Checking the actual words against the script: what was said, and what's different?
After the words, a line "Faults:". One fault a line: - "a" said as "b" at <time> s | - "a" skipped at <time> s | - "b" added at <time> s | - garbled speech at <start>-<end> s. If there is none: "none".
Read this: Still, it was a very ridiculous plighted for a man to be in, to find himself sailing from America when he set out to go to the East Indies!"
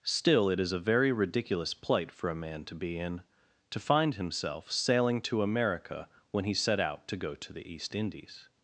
Still, it is a very ridiculous plight for a man to be in, to find himself sailing to America when he set out to go to the East Indies!"
Faults:
- "was" said as "is" at 0.6 s
- "plighted" said as "plight" at 1.7 s
- "from" said as "to" at 5.2 s